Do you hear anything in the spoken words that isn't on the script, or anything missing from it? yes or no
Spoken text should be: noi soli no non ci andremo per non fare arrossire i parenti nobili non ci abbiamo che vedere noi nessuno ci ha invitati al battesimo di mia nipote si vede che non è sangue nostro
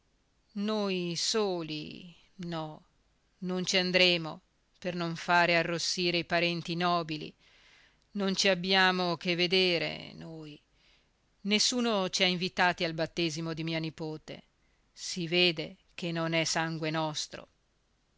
no